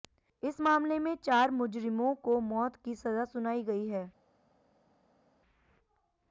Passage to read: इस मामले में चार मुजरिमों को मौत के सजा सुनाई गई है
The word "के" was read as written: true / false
false